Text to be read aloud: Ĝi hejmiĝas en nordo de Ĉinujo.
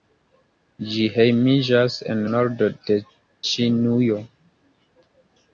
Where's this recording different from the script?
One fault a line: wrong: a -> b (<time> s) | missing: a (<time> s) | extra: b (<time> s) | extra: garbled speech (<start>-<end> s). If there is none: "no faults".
no faults